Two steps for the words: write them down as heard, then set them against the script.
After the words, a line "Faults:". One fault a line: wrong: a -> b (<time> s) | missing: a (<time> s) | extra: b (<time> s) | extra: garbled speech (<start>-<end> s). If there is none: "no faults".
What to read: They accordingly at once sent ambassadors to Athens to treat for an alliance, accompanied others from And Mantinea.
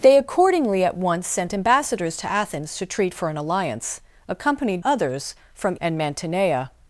They accordingly at once sent ambassadors to Athens to treat for an alliance, accompanied others from And Mantinea.
Faults:
no faults